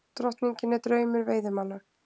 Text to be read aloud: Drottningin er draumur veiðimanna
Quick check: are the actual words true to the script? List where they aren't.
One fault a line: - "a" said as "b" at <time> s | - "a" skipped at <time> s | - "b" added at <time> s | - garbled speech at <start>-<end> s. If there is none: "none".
none